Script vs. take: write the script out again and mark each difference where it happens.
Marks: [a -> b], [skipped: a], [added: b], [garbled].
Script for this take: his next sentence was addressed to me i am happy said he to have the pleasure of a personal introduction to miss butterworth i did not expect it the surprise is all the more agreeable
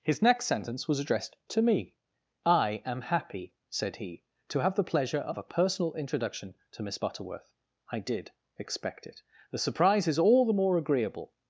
his next sentence was addressed to me i am happy said he to have the pleasure of a personal introduction to miss butterworth i did [skipped: not] expect it the surprise is all the more agreeable